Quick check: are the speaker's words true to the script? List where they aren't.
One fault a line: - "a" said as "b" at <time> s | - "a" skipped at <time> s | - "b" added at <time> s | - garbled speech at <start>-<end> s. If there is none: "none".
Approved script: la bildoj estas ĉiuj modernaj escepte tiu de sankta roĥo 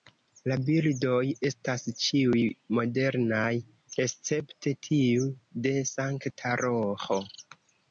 none